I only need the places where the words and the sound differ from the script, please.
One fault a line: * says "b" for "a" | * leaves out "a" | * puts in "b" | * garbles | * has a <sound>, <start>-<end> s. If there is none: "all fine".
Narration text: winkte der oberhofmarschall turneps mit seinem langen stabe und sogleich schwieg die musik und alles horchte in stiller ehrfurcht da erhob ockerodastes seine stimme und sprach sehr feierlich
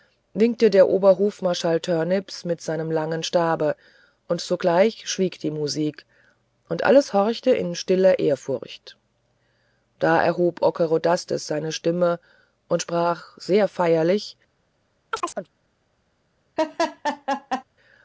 * has a chirp, 15.1-15.5 s
* has a laugh, 16.6-17.6 s